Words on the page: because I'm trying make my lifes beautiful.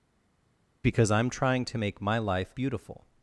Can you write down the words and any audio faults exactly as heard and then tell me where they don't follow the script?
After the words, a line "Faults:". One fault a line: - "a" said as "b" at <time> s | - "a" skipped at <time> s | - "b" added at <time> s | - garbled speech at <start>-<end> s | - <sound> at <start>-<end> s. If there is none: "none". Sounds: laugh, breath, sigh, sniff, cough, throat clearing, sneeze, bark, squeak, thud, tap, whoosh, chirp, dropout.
because I'm trying to make my life beautiful.
Faults:
- "to" added at 1.6 s
- "lifes" said as "life" at 2.2 s